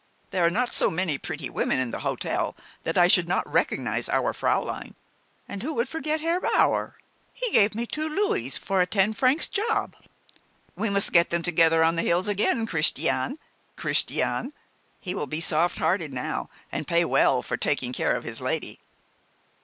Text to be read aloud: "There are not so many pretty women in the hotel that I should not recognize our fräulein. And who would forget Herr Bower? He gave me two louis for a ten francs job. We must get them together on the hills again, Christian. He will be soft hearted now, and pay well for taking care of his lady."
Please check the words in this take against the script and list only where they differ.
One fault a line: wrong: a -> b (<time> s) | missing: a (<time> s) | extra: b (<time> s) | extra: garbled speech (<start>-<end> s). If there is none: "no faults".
extra: Christian (13.8 s)